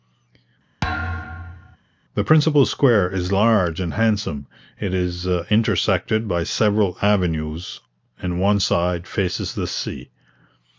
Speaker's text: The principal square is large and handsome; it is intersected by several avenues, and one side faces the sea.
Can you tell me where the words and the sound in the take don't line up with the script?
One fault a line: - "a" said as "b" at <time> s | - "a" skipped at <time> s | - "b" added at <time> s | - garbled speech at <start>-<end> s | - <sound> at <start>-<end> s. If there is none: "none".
- thud at 0.8-1.8 s